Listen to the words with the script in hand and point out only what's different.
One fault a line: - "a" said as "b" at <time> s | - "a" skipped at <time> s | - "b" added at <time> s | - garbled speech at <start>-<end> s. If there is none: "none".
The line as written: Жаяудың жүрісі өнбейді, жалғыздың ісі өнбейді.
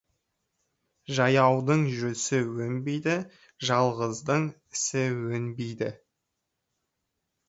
none